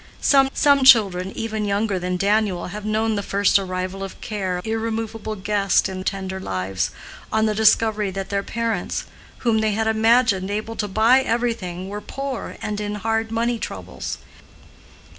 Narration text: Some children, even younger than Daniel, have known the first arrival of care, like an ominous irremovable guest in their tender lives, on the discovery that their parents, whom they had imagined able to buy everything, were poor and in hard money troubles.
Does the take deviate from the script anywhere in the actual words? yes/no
yes